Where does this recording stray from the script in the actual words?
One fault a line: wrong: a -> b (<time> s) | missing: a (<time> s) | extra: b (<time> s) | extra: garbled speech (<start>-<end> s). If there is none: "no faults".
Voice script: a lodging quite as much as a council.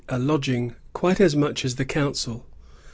wrong: a -> the (1.7 s)